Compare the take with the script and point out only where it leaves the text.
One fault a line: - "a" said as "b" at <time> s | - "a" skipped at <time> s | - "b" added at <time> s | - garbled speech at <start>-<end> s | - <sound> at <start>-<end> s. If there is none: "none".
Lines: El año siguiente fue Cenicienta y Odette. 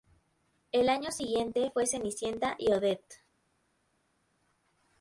none